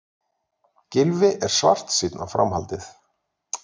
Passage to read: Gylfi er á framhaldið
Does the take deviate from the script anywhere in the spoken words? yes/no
yes